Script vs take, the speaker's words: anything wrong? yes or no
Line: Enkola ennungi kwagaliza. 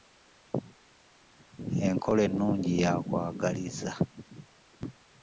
yes